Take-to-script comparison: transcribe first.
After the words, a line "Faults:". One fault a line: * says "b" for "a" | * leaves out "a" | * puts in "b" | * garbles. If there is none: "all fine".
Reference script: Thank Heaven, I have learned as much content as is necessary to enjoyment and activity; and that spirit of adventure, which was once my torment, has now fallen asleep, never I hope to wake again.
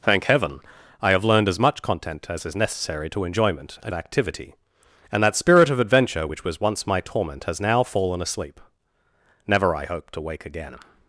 Thank Heaven, I have learned as much content as is necessary to enjoyment and activity; and that spirit of adventure, which was once my torment, has now fallen asleep, never I hope to wake again.
Faults:
all fine